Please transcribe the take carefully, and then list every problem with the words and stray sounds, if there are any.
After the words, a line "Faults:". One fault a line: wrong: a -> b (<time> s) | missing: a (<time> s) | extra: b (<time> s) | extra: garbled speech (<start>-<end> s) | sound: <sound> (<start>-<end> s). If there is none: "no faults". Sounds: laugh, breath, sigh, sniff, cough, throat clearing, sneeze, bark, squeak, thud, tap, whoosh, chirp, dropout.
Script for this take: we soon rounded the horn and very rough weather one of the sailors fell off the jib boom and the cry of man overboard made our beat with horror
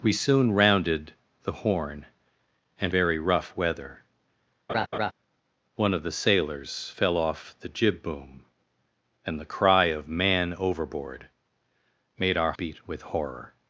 we soon rounded the horn and very rough weather one of the sailors fell off the jib boom and the cry of man overboard made our beat with horror
Faults:
sound: laugh (4.7-5.1 s)